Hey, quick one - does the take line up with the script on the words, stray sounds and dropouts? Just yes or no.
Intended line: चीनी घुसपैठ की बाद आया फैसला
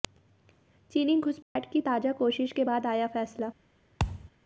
no